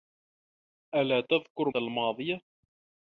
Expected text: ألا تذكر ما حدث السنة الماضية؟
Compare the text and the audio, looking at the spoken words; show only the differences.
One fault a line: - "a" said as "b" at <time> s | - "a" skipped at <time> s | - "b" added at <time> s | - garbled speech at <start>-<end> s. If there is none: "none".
- "ما حدث السنة" skipped at 1.7 s